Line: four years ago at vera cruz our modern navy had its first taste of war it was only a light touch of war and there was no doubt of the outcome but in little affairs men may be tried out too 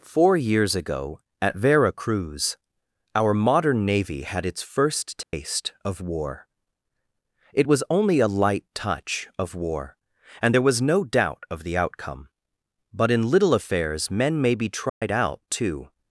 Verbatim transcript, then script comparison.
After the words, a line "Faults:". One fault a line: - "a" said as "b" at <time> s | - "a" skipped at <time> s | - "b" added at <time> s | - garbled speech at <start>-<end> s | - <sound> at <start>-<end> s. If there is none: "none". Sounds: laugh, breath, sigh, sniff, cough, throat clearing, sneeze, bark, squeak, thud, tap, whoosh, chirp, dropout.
four years ago at vera cruz our modern navy had its first taste of war it was only a light touch of war and there was no doubt of the outcome but in little affairs men may be tried out too
Faults:
- dropout at 5.2-5.3 s
- dropout at 14.9-15.0 s